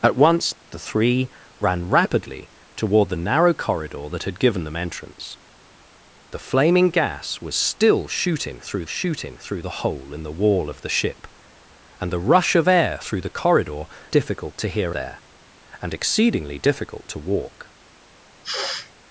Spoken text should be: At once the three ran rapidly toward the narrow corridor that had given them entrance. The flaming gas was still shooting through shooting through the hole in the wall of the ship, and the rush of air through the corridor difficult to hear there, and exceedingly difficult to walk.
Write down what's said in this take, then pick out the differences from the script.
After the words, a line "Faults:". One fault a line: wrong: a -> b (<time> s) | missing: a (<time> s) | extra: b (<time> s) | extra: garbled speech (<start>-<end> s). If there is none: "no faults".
At once the three ran rapidly toward the narrow corridor that had given them entrance. The flaming gas was still shooting through shooting through the hole in the wall of the ship, and the rush of air through the corridor difficult to hear there, and exceedingly difficult to walk.
Faults:
no faults